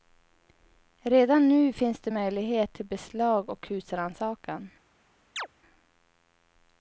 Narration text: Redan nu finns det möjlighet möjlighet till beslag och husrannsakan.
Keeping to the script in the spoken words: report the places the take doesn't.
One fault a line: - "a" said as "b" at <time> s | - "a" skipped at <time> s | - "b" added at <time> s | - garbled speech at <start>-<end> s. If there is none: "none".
- "möjlighet" skipped at 2.7 s